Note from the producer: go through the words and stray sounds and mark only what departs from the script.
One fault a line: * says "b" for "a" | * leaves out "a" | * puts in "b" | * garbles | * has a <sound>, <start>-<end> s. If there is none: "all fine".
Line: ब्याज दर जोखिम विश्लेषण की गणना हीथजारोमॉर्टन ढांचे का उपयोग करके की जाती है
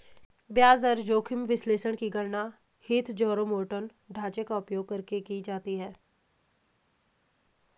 all fine